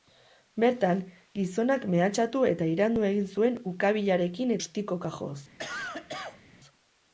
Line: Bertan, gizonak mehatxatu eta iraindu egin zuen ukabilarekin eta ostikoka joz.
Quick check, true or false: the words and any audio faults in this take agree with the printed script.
false